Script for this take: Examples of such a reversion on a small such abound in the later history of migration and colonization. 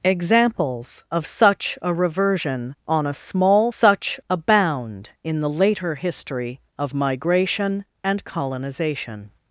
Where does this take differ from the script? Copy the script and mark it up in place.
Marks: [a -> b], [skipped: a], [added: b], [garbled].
Examples of such a reversion on a small such abound in the later history of migration and colonization.